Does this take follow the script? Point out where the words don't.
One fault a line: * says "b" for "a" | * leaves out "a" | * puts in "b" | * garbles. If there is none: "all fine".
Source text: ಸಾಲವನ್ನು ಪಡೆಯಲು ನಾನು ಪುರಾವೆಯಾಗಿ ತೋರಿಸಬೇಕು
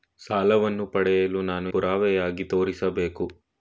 all fine